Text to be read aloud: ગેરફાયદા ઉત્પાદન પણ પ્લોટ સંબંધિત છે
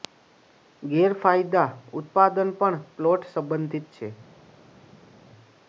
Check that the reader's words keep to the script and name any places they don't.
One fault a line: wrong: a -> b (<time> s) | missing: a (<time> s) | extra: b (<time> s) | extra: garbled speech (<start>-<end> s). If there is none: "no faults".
no faults